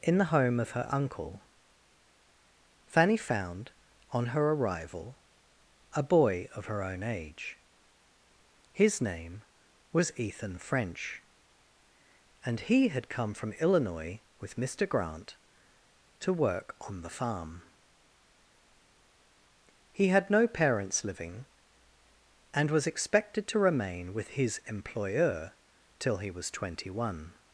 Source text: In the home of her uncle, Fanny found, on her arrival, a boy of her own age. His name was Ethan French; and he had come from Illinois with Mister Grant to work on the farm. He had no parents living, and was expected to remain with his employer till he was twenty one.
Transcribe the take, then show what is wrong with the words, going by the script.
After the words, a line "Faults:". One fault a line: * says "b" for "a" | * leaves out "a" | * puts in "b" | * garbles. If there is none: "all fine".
In the home of her uncle, Fanny found, on her arrival, a boy of her own age. His name was Ethan French; and he had come from Illinois with Mister Grant to work on the farm. He had no parents living, and was expected to remain with his employer till he was twenty one.
Faults:
all fine